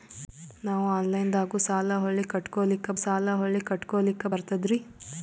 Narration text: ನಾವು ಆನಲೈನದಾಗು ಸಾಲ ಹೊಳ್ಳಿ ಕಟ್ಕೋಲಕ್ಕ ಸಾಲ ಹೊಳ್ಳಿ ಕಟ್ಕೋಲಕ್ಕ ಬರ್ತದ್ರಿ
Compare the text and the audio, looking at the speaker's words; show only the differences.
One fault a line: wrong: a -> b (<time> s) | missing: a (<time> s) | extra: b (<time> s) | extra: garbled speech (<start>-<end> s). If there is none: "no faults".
no faults